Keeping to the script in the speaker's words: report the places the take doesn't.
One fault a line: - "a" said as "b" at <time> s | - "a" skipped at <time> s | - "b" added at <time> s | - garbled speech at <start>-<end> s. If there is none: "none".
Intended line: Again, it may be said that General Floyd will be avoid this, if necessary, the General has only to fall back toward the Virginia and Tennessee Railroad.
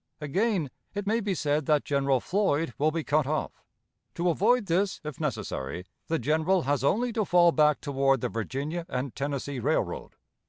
- "cut off To" added at 3.0 s